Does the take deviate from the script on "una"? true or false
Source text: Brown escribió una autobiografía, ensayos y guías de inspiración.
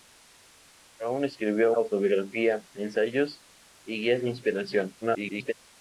true